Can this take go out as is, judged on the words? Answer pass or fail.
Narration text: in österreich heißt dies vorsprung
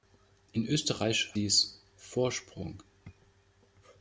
fail